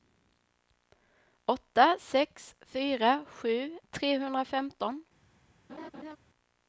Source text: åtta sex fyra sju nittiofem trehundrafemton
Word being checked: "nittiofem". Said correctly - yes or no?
no